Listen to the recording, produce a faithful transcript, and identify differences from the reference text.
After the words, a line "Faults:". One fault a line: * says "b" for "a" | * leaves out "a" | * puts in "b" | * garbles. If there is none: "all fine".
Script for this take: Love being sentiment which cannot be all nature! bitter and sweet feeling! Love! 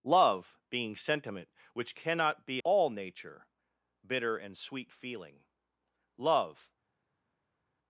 Love being sentiment which cannot be all nature! bitter and sweet feeling! Love!
Faults:
all fine